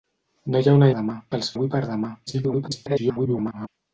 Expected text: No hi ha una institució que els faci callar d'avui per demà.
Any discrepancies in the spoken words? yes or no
yes